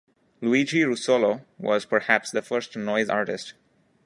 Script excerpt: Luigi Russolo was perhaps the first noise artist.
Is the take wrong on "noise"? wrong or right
right